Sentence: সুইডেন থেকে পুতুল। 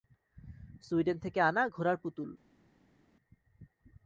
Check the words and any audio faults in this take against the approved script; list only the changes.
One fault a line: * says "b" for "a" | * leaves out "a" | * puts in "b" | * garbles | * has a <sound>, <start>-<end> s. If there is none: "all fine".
* puts in "আনা ঘোড়ার"